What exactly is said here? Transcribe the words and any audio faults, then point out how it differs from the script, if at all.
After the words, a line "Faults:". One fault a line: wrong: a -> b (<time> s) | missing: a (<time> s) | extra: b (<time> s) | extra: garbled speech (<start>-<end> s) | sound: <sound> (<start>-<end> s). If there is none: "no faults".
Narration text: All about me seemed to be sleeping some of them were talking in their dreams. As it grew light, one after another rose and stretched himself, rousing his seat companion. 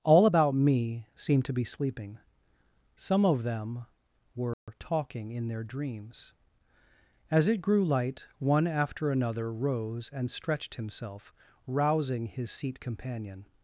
All about me seemed to be sleeping some of them were talking in their dreams. As it grew light, one after another rose and stretched himself, rousing his seat companion.
Faults:
sound: dropout (4.5-4.7 s)